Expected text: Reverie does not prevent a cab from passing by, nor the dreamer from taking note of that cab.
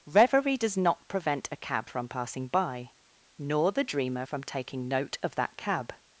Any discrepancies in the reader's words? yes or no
no